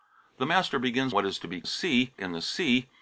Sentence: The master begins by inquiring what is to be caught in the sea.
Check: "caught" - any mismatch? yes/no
yes